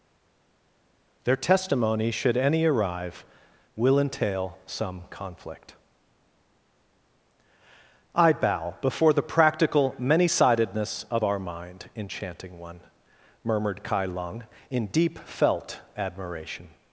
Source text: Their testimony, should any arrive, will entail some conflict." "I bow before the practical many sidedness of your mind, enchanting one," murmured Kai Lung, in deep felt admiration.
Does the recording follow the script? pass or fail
fail